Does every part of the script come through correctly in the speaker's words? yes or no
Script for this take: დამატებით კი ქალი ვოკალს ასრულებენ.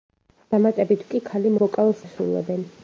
yes